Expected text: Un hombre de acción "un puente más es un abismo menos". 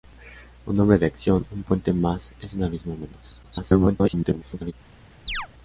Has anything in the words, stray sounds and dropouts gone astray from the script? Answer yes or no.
yes